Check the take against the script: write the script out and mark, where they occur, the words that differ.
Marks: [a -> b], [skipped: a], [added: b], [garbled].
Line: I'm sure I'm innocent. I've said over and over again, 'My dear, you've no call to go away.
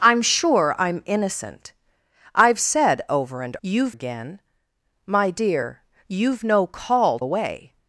I'm sure I'm innocent. I've said over and [over -> you've] again, 'My dear, you've no call [skipped: to go] away.